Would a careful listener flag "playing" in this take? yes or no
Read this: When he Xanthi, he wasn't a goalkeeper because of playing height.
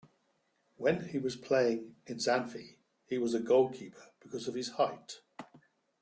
yes